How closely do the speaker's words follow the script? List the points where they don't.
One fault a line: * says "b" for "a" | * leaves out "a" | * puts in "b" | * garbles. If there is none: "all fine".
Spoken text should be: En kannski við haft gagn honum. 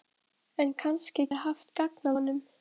all fine